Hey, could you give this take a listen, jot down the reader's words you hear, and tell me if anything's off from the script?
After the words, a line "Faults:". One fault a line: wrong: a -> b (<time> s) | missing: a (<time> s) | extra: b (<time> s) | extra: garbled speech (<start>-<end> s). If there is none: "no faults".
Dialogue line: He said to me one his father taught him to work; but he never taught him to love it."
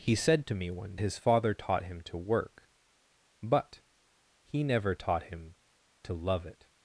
He said to me one his father taught him to work; but he never taught him to love it."
Faults:
no faults